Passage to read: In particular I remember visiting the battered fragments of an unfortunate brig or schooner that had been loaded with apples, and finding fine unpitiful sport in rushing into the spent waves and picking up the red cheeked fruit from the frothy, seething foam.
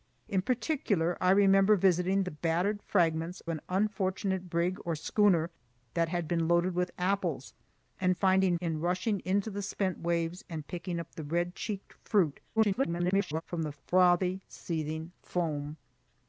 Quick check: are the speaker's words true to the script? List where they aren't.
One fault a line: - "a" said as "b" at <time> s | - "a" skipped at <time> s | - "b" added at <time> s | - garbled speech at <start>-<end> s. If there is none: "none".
- "of" skipped at 3.4 s
- "fine unpitiful sport" skipped at 8.6 s
- garbled speech at 12.6-13.4 s